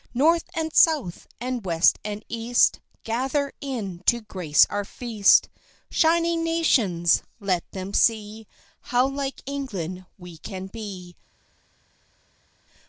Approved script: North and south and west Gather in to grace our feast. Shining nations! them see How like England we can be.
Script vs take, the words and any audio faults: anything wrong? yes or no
yes